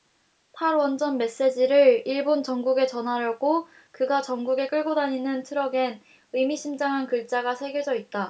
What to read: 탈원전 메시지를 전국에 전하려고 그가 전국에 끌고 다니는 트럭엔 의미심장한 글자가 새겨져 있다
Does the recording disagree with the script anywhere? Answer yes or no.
yes